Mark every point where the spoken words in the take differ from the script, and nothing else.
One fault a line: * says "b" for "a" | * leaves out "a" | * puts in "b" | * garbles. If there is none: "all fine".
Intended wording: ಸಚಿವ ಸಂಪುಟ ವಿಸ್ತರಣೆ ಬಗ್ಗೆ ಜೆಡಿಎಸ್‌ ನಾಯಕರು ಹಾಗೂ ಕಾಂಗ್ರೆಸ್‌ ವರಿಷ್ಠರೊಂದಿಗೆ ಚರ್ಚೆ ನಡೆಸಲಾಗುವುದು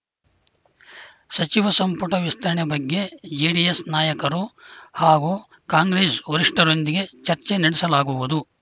all fine